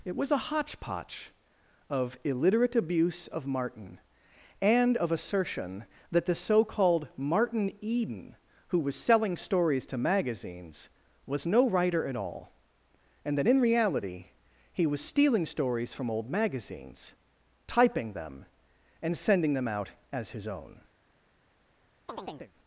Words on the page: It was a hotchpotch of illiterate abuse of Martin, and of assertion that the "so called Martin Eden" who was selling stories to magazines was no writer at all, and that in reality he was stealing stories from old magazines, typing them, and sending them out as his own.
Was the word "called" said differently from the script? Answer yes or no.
no